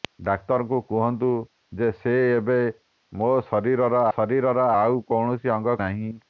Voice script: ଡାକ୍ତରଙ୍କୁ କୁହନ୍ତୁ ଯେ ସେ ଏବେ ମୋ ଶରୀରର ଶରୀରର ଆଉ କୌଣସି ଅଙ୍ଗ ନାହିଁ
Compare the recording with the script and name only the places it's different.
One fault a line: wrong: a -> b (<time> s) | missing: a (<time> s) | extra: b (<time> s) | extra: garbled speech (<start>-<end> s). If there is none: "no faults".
no faults